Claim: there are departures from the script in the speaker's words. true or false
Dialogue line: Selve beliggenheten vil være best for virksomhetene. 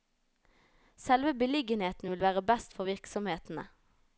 false